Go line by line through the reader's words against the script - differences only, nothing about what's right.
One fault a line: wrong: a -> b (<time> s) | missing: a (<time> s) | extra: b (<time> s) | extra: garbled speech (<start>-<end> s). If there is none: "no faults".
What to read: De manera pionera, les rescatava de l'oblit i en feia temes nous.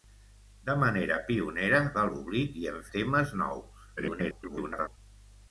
missing: les rescatava (1.8 s)
missing: feia (2.8 s)
extra: garbled speech (4.0-5.0 s)